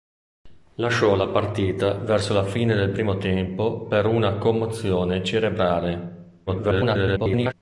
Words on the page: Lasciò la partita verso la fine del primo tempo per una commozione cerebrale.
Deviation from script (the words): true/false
true